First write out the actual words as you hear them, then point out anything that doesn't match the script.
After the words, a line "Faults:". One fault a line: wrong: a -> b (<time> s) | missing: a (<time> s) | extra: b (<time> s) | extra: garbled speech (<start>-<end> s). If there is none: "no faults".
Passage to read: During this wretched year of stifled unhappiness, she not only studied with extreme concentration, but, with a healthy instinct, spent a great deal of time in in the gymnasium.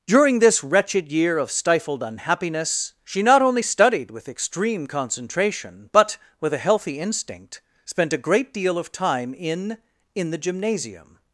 During this wretched year of stifled unhappiness, she not only studied with extreme concentration, but, with a healthy instinct, spent a great deal of time in in the gymnasium.
Faults:
no faults